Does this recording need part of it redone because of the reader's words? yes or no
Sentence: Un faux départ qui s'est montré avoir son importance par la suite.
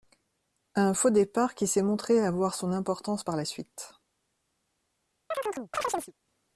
no